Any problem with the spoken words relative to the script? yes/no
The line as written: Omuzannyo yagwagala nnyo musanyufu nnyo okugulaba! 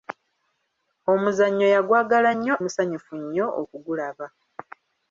no